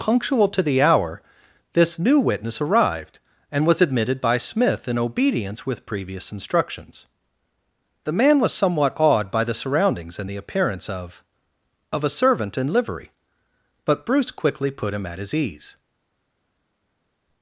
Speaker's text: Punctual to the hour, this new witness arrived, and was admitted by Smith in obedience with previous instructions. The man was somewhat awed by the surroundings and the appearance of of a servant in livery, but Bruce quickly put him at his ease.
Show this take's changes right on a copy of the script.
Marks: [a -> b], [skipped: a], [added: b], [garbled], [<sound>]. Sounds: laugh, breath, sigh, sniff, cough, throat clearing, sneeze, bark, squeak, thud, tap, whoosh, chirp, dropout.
Punctual to the hour, this new witness arrived, and was admitted by Smith in obedience with previous instructions. The man was somewhat awed by the surroundings and the appearance of of a servant in livery, but Bruce quickly put him at his ease.